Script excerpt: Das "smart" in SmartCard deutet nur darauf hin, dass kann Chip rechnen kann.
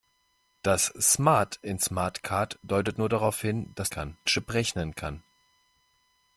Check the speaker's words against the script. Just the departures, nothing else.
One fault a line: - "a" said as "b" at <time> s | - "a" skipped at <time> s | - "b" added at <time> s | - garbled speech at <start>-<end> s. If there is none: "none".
none